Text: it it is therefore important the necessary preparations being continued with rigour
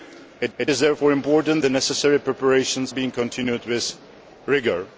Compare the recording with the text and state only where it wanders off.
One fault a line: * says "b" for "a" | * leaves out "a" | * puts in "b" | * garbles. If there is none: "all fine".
all fine